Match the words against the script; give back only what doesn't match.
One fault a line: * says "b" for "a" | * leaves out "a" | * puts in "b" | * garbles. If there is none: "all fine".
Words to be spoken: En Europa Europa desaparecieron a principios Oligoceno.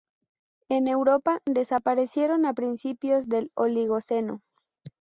* leaves out "Europa"
* puts in "del"